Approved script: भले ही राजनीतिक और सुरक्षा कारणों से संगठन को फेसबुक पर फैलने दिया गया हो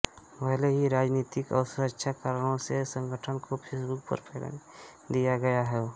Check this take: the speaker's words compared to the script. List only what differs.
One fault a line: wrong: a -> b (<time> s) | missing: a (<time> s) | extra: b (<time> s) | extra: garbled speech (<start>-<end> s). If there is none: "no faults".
no faults